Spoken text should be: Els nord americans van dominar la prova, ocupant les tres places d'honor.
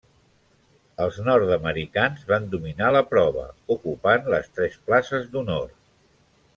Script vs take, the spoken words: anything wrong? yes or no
no